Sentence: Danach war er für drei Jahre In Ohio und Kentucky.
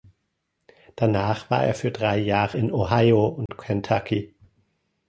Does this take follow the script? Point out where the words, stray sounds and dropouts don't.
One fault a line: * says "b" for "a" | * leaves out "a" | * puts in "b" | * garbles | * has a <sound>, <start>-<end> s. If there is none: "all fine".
* has a dropout, 3.5-3.5 s